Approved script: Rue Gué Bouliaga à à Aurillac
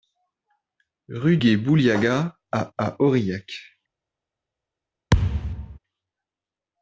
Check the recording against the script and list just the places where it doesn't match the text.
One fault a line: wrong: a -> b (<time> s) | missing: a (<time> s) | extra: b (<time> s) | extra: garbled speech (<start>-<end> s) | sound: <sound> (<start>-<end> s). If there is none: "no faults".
sound: thud (5.1-5.8 s)